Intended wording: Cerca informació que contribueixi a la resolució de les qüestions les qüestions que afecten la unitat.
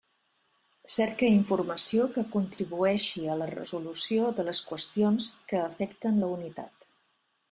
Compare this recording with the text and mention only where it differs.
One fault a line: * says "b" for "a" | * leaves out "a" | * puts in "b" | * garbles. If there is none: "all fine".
* leaves out "les qüestions"